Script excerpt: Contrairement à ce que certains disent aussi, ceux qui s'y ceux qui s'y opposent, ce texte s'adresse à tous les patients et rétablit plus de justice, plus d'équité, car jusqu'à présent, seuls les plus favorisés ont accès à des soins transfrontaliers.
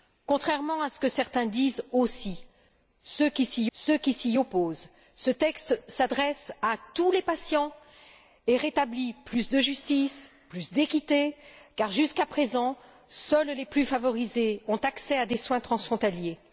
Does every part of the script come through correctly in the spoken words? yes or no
yes